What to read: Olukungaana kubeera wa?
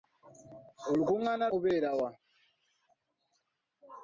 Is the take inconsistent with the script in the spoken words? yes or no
no